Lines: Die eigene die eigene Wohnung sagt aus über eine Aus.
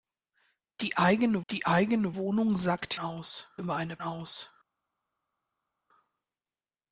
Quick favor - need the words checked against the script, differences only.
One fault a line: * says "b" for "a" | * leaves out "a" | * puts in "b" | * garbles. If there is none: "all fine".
all fine